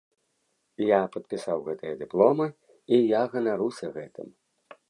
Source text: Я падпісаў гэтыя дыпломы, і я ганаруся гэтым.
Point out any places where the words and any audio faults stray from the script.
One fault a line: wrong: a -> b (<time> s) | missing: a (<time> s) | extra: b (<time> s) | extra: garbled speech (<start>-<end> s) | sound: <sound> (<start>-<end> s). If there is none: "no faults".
no faults